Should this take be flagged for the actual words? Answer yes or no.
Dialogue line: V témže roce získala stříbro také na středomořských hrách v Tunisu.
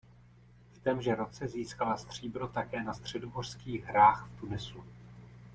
no